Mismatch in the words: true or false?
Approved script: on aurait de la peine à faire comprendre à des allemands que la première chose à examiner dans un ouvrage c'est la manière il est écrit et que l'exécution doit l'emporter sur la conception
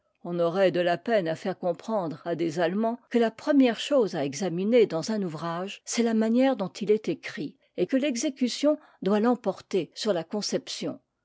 true